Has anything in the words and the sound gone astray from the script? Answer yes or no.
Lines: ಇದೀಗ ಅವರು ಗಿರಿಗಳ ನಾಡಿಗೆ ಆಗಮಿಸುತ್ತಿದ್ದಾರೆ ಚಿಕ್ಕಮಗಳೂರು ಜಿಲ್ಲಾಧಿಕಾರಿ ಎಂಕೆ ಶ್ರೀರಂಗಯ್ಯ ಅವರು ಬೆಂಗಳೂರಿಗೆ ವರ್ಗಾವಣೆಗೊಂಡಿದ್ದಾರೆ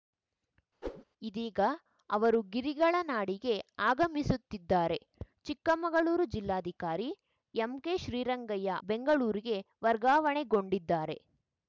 yes